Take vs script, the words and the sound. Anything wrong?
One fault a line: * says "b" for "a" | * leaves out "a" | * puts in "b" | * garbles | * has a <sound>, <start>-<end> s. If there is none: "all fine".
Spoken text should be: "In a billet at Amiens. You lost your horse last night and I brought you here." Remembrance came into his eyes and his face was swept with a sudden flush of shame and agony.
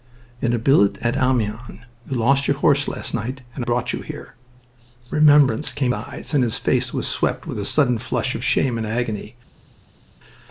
* leaves out "I"
* leaves out "into his"